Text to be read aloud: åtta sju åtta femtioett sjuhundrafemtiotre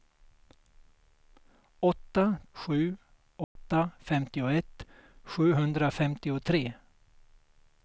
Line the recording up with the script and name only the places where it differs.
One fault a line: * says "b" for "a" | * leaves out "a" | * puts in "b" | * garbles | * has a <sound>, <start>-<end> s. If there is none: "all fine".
* has a dropout, 3.4-3.6 s